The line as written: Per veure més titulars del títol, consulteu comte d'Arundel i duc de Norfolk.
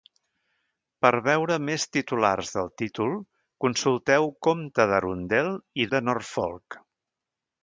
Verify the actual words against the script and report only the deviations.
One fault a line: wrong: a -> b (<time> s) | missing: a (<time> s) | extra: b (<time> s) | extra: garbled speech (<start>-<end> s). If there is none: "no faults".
missing: duc (5.9 s)